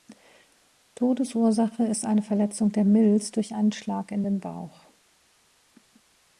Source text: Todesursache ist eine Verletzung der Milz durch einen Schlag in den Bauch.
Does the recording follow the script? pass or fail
pass